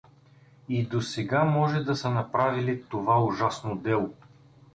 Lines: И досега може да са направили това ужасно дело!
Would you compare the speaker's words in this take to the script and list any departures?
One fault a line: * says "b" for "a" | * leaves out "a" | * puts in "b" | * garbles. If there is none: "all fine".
all fine